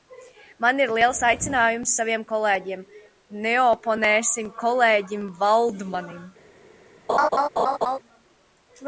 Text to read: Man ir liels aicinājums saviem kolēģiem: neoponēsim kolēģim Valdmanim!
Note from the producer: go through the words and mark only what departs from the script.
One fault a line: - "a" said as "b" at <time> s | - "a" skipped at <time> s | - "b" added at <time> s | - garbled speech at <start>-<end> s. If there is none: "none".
none